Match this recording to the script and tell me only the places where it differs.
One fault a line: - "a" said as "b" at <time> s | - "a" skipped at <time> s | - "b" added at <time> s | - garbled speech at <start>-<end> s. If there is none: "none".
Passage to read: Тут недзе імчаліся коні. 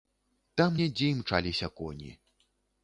- "Тут" said as "Там" at 0.6 s